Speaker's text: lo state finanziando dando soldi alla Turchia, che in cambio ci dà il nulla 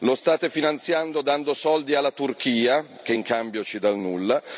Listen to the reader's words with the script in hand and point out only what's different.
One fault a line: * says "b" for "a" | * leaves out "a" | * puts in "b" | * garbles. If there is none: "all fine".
all fine